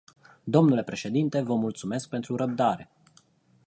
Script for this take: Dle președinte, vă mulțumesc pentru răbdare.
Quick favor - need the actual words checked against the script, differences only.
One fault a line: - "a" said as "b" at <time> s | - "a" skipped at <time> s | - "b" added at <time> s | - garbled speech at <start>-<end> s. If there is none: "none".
none